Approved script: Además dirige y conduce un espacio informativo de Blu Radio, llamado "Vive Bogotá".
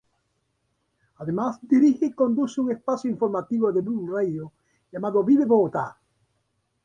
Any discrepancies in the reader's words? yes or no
no